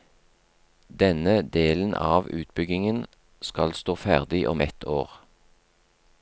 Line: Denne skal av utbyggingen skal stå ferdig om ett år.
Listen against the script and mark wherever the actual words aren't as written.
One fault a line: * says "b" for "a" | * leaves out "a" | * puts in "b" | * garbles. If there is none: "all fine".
* says "delen" for "skal"